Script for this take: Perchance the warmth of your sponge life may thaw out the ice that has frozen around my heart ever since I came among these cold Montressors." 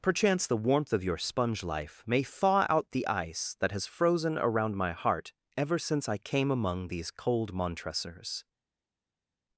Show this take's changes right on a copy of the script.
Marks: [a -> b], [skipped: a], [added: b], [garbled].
Perchance the warmth of your sponge life may thaw out the ice that has frozen around my heart ever since I came among these cold Montressors."